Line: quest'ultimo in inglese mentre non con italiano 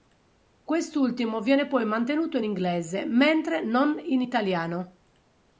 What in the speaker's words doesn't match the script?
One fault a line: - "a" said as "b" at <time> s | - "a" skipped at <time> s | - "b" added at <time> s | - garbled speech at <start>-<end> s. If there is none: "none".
- "viene poi mantenuto" added at 1.4 s
- "con" said as "in" at 4.0 s